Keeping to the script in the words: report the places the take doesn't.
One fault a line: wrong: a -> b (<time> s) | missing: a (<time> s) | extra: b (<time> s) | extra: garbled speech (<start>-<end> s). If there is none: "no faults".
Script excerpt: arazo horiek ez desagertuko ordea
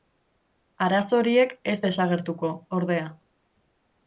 no faults